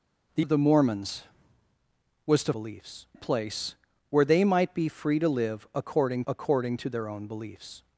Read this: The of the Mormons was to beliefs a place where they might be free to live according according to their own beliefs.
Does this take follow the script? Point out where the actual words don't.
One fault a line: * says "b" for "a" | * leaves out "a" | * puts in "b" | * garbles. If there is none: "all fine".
all fine